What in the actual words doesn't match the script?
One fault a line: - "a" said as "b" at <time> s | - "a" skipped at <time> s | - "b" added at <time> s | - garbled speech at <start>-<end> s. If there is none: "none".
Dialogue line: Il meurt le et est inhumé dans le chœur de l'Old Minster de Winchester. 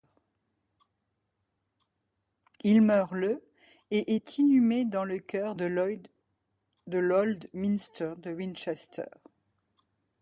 none